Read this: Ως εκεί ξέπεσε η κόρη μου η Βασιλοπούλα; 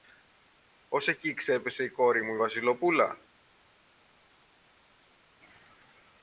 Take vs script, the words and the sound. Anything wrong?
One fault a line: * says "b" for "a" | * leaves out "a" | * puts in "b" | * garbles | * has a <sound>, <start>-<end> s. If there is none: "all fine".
all fine